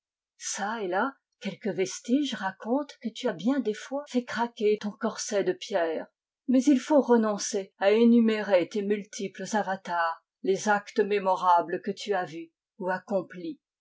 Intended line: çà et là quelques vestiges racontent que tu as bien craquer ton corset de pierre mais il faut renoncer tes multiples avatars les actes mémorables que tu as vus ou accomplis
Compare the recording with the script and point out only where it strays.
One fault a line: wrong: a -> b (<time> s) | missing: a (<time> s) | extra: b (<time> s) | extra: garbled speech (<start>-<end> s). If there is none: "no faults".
extra: des fois fait (3.6 s)
extra: à énumérer (7.8 s)